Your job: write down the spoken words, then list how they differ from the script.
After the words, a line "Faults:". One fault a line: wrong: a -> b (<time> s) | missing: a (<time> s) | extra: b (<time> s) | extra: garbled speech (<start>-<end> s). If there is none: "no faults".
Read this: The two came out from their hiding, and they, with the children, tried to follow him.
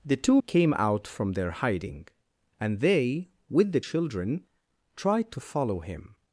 The two came out from their hiding, and they, with the children, tried to follow him.
Faults:
no faults